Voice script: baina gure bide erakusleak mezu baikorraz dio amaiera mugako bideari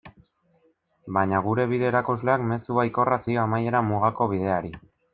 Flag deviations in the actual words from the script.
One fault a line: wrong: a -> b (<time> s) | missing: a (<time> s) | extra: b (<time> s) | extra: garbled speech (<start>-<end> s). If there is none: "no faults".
no faults